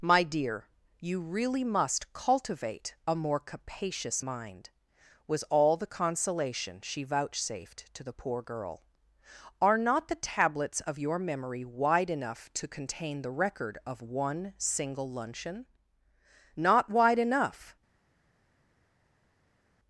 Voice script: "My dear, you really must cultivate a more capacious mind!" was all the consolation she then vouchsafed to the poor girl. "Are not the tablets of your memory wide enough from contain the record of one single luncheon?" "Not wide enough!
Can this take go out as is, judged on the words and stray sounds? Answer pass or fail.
fail